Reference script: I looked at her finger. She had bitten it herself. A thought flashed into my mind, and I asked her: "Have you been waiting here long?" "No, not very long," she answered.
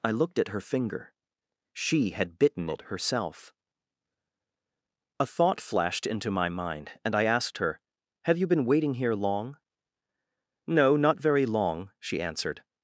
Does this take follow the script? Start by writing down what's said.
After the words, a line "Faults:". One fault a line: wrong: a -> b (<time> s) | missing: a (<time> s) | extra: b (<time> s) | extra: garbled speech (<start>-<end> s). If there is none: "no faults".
I looked at her finger. She had bitten it herself. A thought flashed into my mind, and I asked her: "Have you been waiting here long?" "No, not very long," she answered.
Faults:
no faults